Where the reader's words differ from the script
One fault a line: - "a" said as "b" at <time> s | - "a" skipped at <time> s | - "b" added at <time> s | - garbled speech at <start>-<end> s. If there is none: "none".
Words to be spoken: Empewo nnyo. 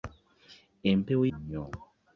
none